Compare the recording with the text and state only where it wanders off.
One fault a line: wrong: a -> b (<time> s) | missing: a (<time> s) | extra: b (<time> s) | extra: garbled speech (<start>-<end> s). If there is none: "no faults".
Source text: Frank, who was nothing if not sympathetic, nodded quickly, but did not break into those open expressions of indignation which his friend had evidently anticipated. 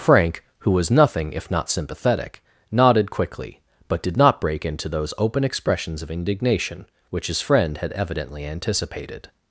no faults